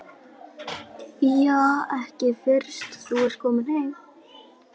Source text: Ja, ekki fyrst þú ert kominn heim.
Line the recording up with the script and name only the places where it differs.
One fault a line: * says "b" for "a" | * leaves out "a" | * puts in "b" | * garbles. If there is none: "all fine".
all fine